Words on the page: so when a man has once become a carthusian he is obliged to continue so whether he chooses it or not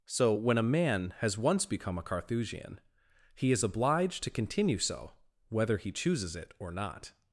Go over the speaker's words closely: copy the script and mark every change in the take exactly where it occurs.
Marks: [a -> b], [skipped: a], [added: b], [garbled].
so when a man has once become a carthusian he is obliged to continue so whether he chooses it or not